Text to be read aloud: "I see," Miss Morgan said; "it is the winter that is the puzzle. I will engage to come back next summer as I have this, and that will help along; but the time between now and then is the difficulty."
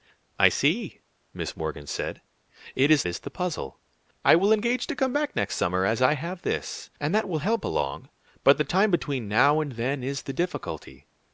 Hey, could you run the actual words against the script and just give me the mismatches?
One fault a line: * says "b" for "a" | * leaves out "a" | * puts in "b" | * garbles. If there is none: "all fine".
* leaves out "the winter that"